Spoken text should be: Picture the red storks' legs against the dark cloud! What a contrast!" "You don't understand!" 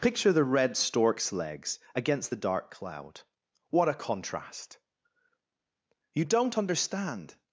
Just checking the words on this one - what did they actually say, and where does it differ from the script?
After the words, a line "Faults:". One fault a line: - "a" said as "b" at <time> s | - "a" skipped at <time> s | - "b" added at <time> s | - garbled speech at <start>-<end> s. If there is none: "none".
Picture the red storks' legs against the dark cloud! What a contrast!" "You don't understand!"
Faults:
none